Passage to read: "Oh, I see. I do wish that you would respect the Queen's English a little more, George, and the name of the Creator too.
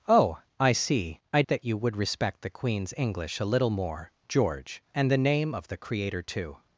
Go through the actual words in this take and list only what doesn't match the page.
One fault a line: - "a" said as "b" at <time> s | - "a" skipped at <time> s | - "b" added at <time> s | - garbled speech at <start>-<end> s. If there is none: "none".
- "do wish" skipped at 1.4 s